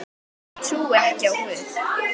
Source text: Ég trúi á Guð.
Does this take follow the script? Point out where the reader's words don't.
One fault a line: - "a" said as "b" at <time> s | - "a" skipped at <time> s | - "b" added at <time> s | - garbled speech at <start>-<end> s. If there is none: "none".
- "ekki" added at 0.9 s